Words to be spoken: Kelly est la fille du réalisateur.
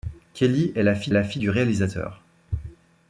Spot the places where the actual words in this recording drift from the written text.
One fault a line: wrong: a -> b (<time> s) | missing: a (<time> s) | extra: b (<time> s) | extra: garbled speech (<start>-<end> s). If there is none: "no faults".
extra: la fille (1.1 s)